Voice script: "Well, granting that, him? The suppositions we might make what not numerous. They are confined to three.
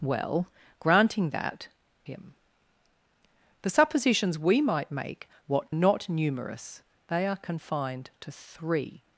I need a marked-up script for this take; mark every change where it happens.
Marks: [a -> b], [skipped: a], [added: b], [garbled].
"Well, granting that, him? The suppositions we might make what not numerous. They are confined to three.